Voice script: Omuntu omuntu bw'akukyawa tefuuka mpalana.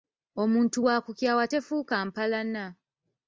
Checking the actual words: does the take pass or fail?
fail